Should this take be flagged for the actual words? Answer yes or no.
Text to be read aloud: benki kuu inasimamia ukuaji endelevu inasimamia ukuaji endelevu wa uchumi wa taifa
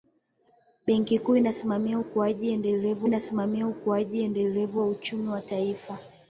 no